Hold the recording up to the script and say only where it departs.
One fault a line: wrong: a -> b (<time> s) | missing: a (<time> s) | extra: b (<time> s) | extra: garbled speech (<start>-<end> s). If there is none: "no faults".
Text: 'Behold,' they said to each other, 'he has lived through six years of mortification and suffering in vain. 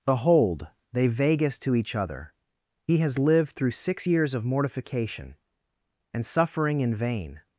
wrong: said -> vagus (1.1 s)